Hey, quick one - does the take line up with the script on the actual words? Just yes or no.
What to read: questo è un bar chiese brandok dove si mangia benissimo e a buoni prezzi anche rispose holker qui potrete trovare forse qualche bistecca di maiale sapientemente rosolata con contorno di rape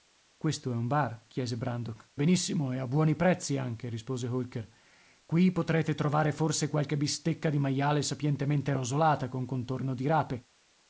no